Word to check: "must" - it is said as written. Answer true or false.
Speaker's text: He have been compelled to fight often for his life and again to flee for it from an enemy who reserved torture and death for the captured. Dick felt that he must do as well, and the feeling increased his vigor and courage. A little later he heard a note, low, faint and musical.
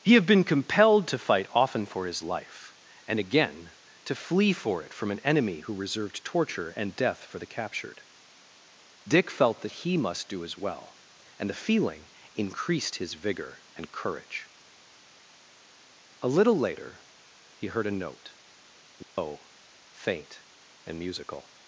true